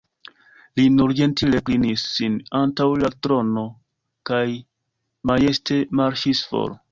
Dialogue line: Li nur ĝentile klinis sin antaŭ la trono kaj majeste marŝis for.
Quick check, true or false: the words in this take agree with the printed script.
true